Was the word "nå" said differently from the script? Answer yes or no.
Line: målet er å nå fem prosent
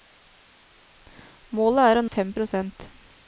yes